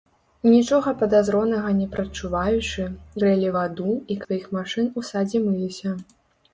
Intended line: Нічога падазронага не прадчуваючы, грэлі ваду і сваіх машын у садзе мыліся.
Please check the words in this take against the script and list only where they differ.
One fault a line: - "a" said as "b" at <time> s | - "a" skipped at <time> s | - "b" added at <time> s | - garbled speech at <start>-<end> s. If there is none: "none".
none